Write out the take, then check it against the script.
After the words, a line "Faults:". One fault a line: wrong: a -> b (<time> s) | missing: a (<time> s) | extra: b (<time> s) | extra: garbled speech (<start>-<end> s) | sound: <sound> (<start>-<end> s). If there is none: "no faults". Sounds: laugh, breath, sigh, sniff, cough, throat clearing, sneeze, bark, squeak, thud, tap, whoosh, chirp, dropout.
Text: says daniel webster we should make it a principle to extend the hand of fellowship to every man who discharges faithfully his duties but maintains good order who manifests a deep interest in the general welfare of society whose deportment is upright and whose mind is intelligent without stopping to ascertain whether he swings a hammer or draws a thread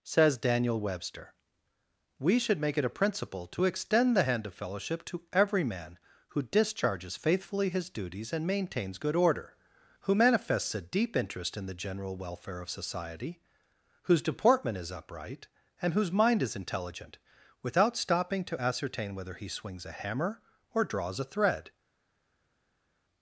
says daniel webster we should make it a principle to extend the hand of fellowship to every man who discharges faithfully his duties and maintains good order who manifests a deep interest in the general welfare of society whose deportment is upright and whose mind is intelligent without stopping to ascertain whether he swings a hammer or draws a thread
Faults:
wrong: but -> and (8.3 s)